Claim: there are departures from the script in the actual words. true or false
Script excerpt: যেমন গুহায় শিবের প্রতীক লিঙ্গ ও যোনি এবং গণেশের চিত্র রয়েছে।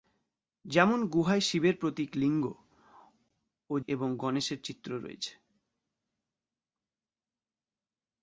true